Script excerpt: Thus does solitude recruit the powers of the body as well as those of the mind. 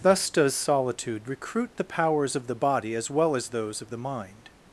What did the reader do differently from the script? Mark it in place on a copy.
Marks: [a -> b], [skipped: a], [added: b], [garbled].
Thus does solitude recruit the powers of the body as well as those of the mind.